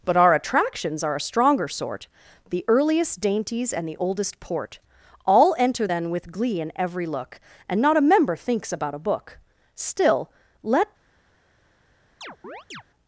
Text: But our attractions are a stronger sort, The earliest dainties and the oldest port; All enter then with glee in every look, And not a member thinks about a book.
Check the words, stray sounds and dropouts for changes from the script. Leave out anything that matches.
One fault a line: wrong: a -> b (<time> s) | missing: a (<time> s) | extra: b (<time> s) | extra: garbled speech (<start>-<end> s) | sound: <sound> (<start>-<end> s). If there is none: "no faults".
extra: Still let (9.7 s)
sound: chirp (12.2-12.8 s)